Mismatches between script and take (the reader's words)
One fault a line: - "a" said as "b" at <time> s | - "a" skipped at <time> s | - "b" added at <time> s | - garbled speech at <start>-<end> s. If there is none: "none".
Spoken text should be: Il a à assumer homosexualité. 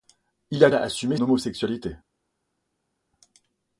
none